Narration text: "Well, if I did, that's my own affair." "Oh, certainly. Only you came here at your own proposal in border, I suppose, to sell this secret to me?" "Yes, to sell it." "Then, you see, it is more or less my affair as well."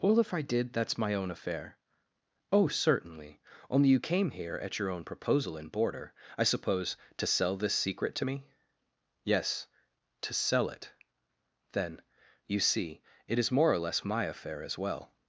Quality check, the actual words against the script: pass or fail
pass